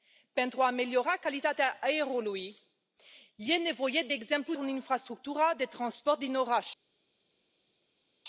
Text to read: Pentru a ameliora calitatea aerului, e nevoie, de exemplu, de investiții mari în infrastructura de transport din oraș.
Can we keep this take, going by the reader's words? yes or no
no